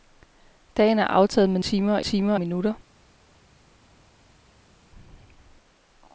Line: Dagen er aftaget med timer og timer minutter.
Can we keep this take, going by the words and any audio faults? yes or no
yes